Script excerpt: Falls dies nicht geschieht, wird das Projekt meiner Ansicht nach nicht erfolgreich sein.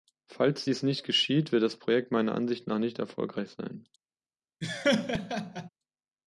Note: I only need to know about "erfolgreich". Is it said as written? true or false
true